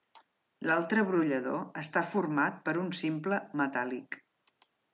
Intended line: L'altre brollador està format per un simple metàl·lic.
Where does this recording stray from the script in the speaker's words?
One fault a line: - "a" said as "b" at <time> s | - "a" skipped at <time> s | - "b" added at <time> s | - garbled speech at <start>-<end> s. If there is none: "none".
none